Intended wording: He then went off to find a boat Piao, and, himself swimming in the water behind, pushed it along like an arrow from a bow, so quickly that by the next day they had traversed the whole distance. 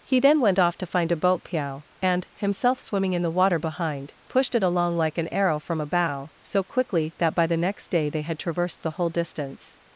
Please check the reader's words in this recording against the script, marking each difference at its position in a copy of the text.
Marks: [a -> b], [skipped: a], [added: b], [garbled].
He then went off to find a boat Piao, and, himself swimming in the water behind, pushed it along like an arrow from a bow, so quickly that by the next day they had traversed the whole distance.